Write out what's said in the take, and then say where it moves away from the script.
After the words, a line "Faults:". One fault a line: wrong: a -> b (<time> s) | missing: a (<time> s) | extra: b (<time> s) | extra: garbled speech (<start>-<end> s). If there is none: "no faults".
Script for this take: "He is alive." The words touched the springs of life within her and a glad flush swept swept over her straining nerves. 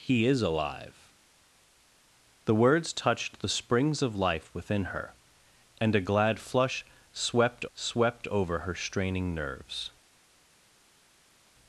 "He is alive." The words touched the springs of life within her and a glad flush swept swept over her straining nerves.
Faults:
no faults